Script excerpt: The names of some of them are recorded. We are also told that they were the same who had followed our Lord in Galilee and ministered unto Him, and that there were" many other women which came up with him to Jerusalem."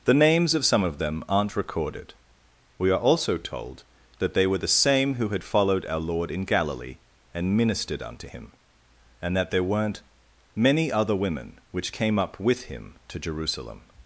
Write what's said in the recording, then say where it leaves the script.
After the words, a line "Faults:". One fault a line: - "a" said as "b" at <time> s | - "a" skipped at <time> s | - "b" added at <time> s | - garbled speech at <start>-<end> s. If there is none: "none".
The names of some of them aren't recorded. We are also told that they were the same who had followed our Lord in Galilee and ministered unto Him, and that there weren't" many other women which came up with him to Jerusalem."
Faults:
- "are" said as "aren't" at 1.3 s
- "were" said as "weren't" at 9.6 s